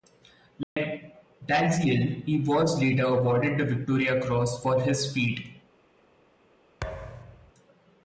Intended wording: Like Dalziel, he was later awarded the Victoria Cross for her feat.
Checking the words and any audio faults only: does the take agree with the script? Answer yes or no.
no